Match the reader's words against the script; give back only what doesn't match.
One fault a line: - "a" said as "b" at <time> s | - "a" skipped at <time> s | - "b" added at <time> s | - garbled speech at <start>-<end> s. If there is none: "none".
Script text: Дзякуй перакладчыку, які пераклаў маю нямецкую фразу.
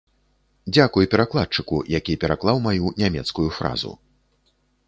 none